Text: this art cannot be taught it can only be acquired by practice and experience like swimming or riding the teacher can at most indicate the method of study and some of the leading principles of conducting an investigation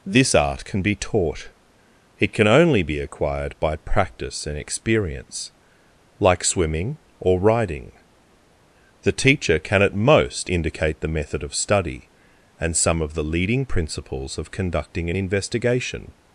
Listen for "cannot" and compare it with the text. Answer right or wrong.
wrong